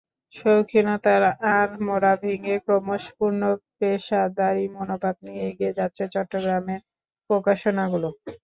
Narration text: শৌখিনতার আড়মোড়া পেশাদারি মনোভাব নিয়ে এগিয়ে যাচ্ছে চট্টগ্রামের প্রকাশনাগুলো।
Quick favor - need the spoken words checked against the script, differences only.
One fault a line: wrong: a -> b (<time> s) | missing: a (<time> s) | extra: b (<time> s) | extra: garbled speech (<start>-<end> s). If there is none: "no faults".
extra: ভেঙে ক্রমশ পূর্ণ (2.2 s)